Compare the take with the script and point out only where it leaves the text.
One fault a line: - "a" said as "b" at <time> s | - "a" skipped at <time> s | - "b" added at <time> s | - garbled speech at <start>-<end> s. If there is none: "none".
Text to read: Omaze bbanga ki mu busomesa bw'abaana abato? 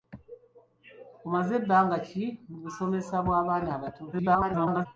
- garbled speech at 4.1-4.9 s